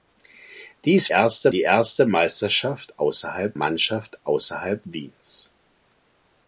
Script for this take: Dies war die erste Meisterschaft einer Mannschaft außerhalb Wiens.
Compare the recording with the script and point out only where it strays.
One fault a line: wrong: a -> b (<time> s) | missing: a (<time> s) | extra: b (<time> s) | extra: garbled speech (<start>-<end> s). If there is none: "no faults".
wrong: war -> erste (1.1 s)
wrong: einer -> außerhalb (3.0 s)